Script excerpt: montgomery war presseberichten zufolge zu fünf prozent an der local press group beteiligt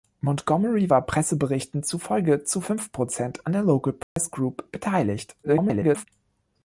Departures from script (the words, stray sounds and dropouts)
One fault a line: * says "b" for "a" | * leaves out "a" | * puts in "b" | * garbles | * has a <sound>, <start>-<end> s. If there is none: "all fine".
* has a dropout, 4.0-4.2 s
* garbles